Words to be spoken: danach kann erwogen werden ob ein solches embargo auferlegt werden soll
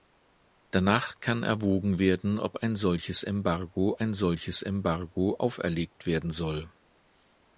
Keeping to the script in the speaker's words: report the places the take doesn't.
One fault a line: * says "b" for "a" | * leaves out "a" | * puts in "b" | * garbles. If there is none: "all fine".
* puts in "ein solches embargo"